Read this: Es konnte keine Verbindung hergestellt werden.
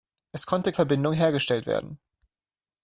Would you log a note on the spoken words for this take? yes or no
yes